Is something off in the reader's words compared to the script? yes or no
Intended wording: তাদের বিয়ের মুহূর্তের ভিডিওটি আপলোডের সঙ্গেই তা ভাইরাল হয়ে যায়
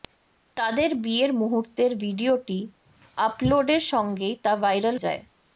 yes